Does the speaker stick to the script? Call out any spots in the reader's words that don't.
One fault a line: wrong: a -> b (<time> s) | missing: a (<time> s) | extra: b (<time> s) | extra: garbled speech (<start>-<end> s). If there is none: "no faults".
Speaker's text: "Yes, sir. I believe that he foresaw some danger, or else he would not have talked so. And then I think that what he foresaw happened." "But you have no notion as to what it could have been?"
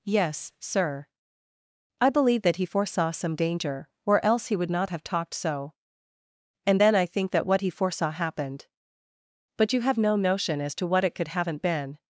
wrong: have -> haven't (11.3 s)